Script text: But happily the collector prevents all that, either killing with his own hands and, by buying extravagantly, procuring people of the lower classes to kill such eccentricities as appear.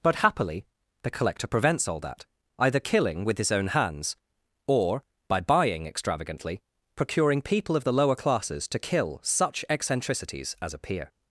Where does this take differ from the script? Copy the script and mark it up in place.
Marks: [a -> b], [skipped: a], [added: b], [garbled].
But happily the collector prevents all that, either killing with his own hands [and, -> or] by buying extravagantly, procuring people of the lower classes to kill such eccentricities as appear.